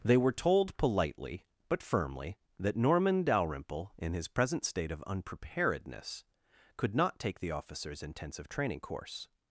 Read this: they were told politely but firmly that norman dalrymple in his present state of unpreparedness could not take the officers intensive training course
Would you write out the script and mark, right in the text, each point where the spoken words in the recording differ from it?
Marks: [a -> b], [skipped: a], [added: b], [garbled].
they were told politely but firmly that norman dalrymple in his present state of unpreparedness could not take the officers intensive training course